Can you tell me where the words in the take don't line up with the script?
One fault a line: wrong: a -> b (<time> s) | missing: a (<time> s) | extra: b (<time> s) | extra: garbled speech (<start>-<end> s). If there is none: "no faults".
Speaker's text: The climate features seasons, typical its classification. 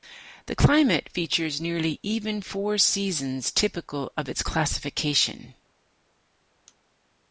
extra: nearly even four (1.6 s)
extra: of (4.2 s)